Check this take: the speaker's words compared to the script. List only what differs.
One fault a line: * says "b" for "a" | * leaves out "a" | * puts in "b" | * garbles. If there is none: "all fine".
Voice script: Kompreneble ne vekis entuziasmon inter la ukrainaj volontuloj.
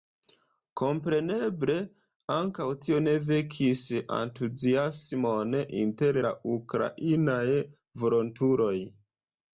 * puts in "ankaŭ tio"